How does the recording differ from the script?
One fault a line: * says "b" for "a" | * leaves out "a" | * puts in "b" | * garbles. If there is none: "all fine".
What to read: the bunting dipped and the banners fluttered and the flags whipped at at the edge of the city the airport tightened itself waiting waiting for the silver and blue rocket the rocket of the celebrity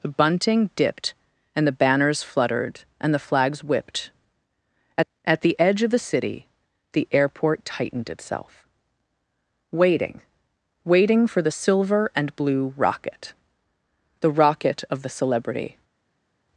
all fine